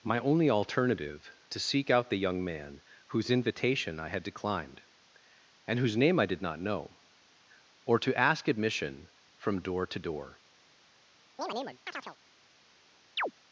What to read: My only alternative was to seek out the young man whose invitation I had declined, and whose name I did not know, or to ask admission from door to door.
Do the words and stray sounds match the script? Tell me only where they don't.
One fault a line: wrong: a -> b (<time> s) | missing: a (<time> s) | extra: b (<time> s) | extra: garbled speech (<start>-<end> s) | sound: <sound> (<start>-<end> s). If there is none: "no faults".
missing: was (1.3 s)
sound: chirp (11.4-12.2 s)
sound: chirp (13.2-13.3 s)